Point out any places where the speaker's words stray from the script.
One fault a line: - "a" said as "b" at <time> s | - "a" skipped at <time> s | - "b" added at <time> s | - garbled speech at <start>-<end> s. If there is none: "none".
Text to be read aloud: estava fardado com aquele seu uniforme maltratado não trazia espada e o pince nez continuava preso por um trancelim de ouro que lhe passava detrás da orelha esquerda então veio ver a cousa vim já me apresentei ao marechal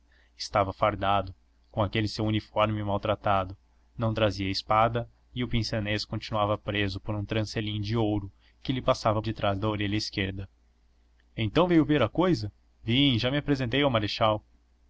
none